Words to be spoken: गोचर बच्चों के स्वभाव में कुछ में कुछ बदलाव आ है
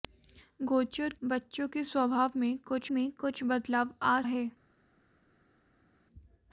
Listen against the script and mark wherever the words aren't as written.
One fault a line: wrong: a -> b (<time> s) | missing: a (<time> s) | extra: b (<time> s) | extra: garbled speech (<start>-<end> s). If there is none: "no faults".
no faults